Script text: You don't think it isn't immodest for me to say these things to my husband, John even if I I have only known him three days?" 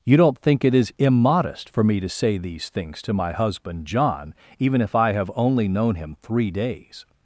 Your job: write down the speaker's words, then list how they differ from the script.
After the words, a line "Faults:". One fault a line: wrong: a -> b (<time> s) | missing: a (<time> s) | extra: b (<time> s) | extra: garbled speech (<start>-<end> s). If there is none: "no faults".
You don't think it is immodest for me to say these things to my husband, John even if I have only known him three days?"
Faults:
wrong: isn't -> is (0.7 s)
missing: I (5.1 s)